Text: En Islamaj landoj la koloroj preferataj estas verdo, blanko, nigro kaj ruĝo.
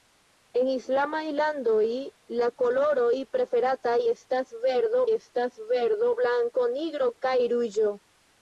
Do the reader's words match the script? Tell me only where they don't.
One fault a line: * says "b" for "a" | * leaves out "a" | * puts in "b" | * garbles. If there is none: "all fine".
* puts in "estas verdo"